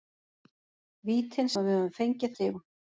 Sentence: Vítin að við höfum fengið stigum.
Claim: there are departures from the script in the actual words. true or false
false